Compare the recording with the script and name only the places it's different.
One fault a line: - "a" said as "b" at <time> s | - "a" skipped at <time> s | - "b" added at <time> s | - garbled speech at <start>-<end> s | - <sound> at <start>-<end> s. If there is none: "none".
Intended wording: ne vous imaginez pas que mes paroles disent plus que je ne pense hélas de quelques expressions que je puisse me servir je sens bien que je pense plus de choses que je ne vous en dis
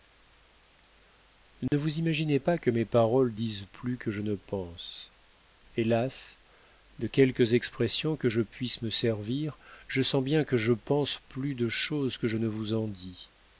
- dropout at 1.7-1.7 s